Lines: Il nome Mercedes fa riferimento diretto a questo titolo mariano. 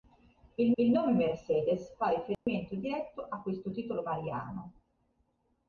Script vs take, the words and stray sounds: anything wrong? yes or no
yes